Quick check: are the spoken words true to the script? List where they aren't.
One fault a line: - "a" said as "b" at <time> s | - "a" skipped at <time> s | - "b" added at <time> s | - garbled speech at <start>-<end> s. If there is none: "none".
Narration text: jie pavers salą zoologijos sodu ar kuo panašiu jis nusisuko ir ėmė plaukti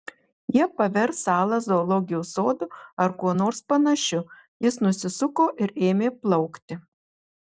- "nors" added at 3.4 s